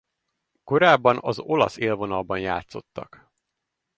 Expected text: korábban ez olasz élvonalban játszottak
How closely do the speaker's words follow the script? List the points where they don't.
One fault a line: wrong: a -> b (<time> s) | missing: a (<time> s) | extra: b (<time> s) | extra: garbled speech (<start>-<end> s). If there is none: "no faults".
wrong: ez -> az (1.2 s)